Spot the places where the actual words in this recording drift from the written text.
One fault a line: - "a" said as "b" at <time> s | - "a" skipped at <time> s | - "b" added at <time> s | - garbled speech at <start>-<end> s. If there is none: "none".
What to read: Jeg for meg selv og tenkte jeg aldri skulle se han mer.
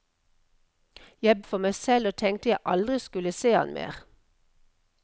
none